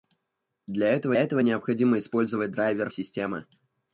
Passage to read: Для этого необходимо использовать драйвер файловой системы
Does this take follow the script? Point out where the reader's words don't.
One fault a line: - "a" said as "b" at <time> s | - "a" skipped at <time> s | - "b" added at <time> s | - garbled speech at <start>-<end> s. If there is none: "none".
- "этого" added at 1.1 s
- "файловой" skipped at 2.9 s